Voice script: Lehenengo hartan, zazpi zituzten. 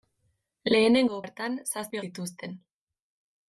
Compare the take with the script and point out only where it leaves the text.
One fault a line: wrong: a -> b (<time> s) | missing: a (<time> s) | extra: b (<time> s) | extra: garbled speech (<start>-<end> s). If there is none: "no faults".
no faults